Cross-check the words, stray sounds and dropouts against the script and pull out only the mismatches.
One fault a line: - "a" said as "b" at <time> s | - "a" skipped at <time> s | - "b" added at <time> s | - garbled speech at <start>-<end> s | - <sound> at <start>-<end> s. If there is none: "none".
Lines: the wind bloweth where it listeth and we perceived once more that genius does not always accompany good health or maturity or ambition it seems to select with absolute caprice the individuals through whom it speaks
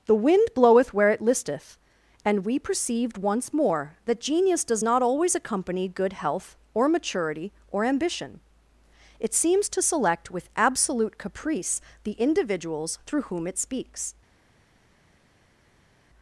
none